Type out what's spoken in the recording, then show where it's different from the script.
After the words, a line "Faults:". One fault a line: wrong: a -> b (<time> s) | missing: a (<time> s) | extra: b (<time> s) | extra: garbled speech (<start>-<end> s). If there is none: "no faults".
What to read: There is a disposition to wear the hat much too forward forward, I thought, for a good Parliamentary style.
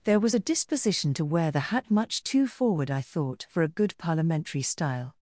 There was a disposition to wear the hat much too forward, I thought, for a good Parliamentary style.
Faults:
wrong: is -> was (0.2 s)
missing: forward (2.9 s)